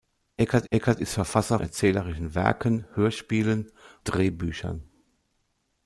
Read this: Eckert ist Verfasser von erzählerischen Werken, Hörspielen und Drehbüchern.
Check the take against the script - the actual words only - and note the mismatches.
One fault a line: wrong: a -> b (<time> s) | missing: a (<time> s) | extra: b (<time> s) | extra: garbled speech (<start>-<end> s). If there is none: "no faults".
extra: eckert (0.7 s)
missing: von (1.6 s)
missing: und (3.7 s)